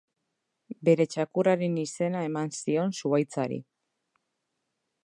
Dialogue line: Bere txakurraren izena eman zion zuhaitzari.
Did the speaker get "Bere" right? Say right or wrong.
right